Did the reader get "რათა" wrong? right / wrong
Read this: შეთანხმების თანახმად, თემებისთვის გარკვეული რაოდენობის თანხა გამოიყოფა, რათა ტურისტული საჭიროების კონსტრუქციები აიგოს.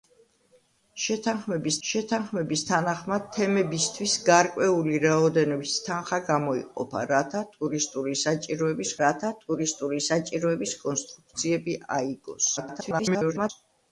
right